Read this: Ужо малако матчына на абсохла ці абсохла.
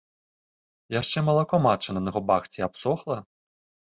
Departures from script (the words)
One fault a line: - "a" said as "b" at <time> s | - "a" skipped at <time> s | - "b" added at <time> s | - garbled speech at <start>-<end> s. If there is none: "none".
- "Ужо" said as "Яшчэ" at 1.0 s
- "абсохла" said as "губах" at 2.1 s